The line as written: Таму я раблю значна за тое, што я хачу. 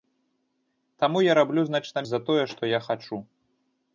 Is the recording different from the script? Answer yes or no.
no